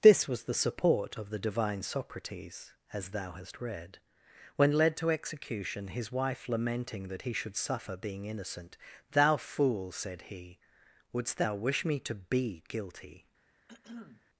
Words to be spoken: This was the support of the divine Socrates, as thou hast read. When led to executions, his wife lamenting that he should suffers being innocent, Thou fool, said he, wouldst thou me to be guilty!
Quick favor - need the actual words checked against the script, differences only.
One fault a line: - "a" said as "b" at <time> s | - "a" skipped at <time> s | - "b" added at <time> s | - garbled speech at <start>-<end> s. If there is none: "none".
- "executions" said as "execution" at 5.1 s
- "suffers" said as "suffer" at 7.6 s
- "wish" added at 11.5 s